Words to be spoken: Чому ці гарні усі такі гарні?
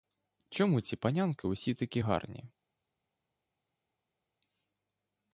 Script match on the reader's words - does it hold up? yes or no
no